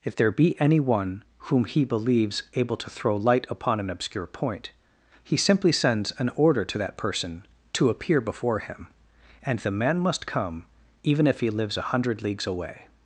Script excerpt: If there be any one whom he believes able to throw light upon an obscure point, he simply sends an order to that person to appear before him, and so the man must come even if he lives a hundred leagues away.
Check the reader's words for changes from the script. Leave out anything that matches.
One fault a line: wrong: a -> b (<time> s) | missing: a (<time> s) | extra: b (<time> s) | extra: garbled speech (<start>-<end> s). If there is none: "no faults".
missing: so (9.6 s)